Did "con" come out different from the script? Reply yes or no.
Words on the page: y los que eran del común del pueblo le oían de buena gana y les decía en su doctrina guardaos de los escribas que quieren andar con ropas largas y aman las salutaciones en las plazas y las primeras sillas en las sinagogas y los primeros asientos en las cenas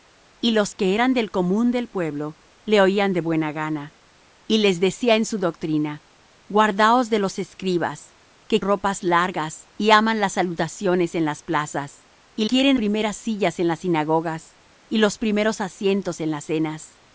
yes